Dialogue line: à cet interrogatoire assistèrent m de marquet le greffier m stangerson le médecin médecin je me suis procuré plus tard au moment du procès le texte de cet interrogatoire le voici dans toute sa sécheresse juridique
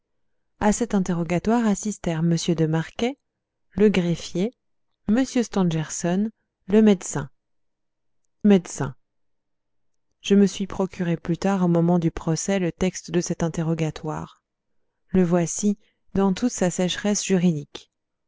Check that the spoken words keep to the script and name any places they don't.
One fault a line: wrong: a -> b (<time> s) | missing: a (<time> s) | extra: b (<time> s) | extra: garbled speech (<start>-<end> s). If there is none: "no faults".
no faults